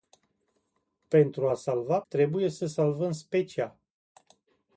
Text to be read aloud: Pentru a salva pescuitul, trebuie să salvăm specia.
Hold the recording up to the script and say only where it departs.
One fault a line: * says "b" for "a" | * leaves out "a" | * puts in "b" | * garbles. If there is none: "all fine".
* leaves out "pescuitul"